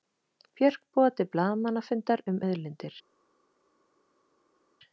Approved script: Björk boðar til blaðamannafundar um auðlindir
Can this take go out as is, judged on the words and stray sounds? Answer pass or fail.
pass